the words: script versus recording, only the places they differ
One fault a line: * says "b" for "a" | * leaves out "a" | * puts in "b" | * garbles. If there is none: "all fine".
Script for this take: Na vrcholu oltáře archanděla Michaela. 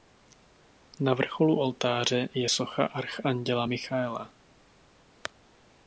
* puts in "je socha"